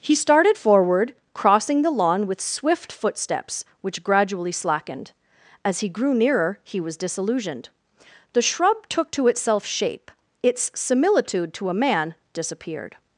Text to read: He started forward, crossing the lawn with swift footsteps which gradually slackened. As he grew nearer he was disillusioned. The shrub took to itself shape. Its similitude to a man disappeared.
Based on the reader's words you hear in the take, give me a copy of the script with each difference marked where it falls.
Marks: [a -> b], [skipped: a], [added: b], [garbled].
He started forward, crossing the lawn with swift footsteps which gradually slackened. As he grew nearer he was disillusioned. The shrub took to itself shape. Its similitude to a man disappeared.